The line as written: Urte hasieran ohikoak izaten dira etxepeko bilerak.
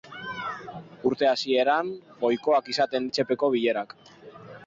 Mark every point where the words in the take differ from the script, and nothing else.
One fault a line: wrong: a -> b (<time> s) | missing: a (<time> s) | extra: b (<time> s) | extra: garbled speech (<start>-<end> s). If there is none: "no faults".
missing: dira (3.1 s)